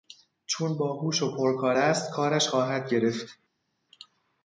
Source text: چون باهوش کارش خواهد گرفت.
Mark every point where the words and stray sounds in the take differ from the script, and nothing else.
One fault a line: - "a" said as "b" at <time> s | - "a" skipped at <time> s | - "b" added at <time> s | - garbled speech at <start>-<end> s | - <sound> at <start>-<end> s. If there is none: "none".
- "و پرکار است" added at 1.2 s